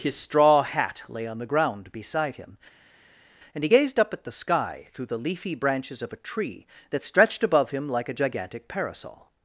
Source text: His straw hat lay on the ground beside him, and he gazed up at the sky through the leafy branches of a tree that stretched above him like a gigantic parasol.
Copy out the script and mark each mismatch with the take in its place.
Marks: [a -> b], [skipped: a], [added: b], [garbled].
His straw hat lay on the ground beside him, and he gazed up at the sky through the leafy branches of a tree that stretched above him like a gigantic parasol.